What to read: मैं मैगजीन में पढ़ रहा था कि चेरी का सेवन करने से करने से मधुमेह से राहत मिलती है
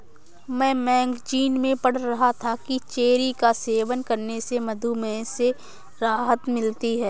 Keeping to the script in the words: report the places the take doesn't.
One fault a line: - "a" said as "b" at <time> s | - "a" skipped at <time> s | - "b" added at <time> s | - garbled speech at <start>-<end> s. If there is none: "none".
- "करने से" skipped at 4.6 s